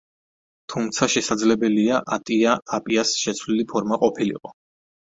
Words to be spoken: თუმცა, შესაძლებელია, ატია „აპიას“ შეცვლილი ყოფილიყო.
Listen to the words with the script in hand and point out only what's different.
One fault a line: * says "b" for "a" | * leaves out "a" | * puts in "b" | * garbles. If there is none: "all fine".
* puts in "ფორმა"